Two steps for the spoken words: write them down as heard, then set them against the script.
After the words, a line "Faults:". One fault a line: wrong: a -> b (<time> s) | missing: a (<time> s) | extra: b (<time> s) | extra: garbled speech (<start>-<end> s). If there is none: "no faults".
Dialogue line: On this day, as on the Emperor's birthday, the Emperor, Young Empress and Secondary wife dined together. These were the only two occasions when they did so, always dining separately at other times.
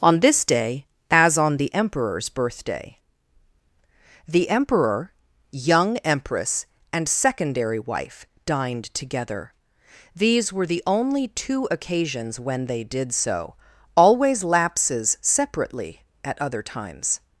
On this day, as on the Emperor's birthday, the Emperor, Young Empress and Secondary wife dined together. These were the only two occasions when they did so, always lapses separately at other times.
Faults:
wrong: dining -> lapses (14.4 s)